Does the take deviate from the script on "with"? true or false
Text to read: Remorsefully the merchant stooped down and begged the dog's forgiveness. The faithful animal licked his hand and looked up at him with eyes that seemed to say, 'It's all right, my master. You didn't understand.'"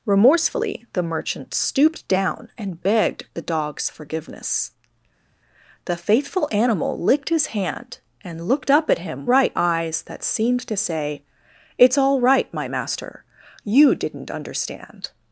true